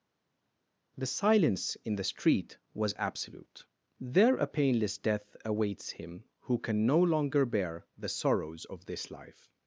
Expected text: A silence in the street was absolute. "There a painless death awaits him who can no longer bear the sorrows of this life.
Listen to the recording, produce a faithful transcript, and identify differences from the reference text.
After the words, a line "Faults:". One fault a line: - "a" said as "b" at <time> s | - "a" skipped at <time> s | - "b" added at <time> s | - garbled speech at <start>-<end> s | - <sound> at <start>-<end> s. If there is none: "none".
The silence in the street was absolute. "There a painless death awaits him who can no longer bear the sorrows of this life.
Faults:
- "A" said as "The" at 1.0 s